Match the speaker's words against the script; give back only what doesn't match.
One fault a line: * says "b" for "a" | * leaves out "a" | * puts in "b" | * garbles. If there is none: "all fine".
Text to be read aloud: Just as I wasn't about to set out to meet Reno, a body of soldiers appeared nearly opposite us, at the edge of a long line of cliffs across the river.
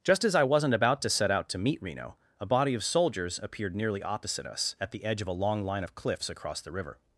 all fine